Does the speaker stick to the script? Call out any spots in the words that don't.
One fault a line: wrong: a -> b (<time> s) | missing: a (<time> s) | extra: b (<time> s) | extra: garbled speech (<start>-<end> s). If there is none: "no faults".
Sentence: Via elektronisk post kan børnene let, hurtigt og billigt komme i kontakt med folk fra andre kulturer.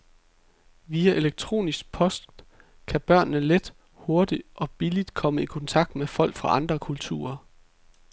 no faults